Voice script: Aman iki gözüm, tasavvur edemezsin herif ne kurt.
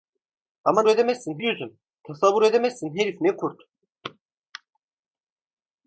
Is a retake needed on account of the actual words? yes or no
yes